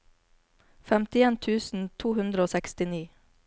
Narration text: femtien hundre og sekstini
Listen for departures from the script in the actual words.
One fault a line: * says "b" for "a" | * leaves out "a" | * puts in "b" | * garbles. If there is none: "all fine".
* puts in "tusen to"